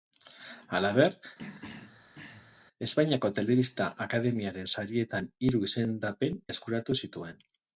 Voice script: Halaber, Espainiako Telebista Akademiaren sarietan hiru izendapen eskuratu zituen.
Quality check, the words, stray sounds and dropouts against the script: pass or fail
fail